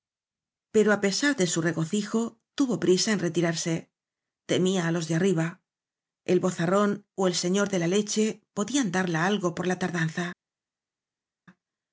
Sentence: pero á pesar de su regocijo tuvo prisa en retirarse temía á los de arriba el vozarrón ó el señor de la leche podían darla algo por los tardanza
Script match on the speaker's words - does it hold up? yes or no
no